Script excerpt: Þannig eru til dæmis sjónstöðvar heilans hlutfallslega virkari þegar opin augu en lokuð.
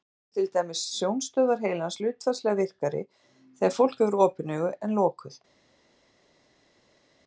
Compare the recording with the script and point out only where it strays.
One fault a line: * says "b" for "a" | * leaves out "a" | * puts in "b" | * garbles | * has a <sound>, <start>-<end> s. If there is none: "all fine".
* puts in "fólk hefur"